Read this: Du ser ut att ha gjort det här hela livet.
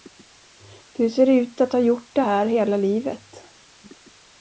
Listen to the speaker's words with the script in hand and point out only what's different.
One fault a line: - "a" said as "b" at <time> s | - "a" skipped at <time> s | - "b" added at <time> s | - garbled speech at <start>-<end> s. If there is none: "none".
none